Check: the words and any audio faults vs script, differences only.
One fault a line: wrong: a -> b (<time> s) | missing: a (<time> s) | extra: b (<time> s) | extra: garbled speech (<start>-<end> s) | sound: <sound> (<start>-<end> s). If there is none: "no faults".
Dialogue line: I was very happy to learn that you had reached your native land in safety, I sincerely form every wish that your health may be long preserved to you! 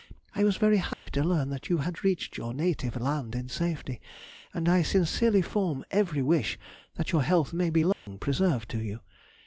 sound: dropout (0.9-1.1 s)
extra: and (4.5 s)
sound: dropout (7.9-8.1 s)